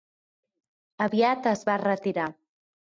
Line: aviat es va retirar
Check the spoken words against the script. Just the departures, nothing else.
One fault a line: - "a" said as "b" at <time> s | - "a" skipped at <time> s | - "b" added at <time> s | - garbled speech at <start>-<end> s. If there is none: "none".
none